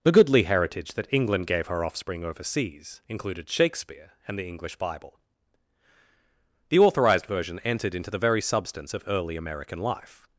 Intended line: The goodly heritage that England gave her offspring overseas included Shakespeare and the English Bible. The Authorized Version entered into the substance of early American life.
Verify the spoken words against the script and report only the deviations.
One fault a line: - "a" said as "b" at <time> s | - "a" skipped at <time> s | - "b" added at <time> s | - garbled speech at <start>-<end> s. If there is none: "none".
- "very" added at 8.2 s